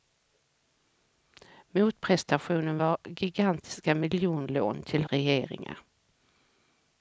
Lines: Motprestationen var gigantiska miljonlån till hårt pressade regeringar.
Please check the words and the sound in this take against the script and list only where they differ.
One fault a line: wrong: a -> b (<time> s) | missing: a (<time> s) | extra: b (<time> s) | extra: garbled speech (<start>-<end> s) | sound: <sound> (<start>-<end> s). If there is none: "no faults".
missing: hårt pressade (5.0 s)